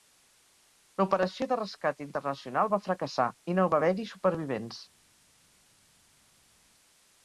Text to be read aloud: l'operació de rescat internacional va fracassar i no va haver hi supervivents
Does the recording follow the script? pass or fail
pass